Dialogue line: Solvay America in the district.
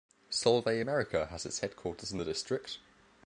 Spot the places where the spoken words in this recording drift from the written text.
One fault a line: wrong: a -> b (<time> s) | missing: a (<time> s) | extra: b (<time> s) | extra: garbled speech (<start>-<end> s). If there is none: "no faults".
extra: has its headquarters (1.3 s)